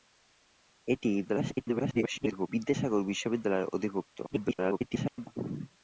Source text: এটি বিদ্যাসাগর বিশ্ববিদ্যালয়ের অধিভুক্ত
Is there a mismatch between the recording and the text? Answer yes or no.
yes